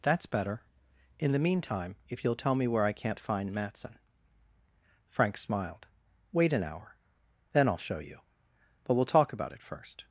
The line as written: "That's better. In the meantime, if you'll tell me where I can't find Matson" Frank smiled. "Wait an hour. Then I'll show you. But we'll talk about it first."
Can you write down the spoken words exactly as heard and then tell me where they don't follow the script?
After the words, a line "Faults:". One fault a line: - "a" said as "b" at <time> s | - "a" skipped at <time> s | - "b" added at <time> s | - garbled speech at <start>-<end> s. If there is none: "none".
"That's better. In the meantime, if you'll tell me where I can't find Matson" Frank smiled. "Wait an hour. Then I'll show you. But we'll talk about it first."
Faults:
none